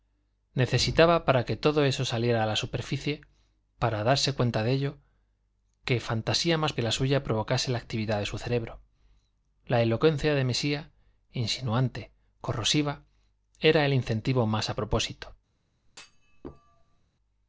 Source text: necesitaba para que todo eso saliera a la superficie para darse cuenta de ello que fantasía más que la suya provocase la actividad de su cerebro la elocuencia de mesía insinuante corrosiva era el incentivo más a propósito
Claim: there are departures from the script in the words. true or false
false